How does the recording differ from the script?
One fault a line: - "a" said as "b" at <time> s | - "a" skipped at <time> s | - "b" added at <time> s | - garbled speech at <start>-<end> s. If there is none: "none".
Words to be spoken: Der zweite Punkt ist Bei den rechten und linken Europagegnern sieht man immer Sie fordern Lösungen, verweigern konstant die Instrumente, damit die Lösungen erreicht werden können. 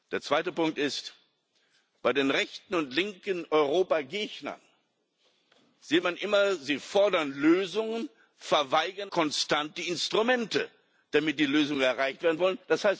none